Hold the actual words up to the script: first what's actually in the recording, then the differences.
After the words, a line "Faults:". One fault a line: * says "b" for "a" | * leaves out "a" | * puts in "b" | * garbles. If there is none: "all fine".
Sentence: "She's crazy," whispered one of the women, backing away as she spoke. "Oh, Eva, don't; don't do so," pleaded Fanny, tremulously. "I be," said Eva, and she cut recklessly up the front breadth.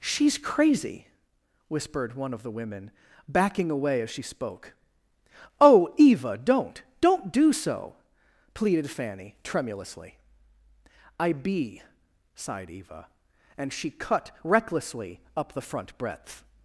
"She's crazy," whispered one of the women, backing away as she spoke. "Oh, Eva, don't; don't do so," pleaded Fanny, tremulously. "I be," sighed Eva, and she cut recklessly up the front breadth.
Faults:
* says "sighed" for "said"